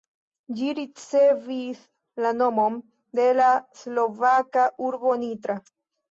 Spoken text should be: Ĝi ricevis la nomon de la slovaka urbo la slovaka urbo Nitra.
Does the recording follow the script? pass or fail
fail